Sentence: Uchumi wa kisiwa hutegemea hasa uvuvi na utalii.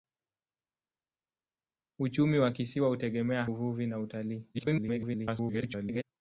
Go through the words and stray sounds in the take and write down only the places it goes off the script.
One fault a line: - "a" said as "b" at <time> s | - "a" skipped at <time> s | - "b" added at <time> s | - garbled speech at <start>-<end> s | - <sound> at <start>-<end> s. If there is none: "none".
- "hasa" skipped at 3.5 s
- garbled speech at 4.5-6.0 s